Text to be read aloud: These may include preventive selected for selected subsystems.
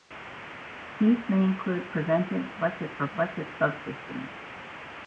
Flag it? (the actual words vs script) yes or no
no